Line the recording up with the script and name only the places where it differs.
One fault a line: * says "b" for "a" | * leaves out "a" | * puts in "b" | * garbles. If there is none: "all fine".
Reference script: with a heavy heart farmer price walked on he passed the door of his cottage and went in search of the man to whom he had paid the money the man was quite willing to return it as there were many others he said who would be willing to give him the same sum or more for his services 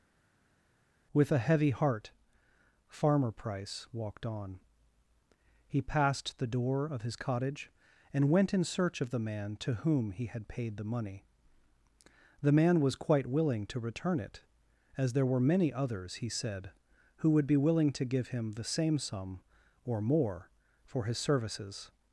all fine